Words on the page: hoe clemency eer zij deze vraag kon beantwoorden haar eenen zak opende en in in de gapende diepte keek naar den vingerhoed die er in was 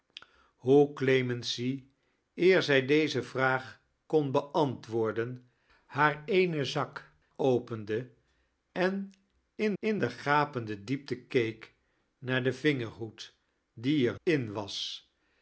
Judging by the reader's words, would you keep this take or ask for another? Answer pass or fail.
pass